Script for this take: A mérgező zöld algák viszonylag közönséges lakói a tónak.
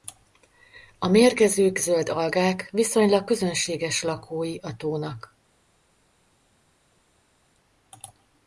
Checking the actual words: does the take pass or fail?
pass